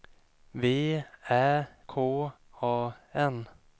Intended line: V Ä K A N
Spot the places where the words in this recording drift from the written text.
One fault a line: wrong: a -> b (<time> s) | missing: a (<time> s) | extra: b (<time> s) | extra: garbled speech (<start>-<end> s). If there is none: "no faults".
no faults